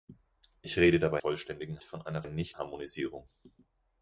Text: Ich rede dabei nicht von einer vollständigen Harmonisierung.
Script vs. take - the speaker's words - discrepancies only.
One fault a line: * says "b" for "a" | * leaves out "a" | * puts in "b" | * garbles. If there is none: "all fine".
* says "vollständigen" for "nicht"
* says "nicht" for "vollständigen"